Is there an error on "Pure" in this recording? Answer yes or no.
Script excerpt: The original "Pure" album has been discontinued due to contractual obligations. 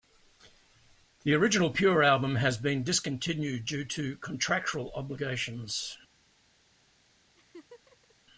no